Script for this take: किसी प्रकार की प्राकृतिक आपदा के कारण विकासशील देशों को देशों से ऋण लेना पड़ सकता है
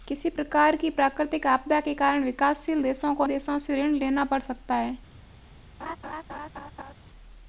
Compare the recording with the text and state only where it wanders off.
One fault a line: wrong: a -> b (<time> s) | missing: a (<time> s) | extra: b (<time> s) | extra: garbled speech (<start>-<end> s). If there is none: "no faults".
no faults